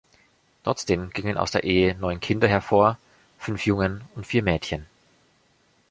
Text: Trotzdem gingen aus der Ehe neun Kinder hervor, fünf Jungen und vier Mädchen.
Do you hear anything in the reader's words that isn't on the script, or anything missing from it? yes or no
no